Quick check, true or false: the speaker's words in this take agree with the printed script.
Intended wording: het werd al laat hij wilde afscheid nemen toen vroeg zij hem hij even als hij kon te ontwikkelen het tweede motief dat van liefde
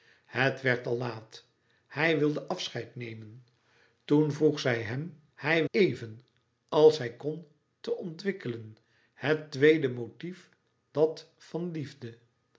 true